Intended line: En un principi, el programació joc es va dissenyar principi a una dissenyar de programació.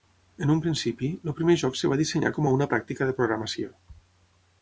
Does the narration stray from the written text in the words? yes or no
yes